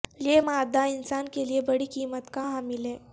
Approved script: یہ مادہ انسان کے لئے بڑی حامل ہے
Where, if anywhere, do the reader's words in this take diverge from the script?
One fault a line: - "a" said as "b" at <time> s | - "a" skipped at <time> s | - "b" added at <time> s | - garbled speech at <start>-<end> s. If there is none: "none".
- "قیمت کا" added at 1.9 s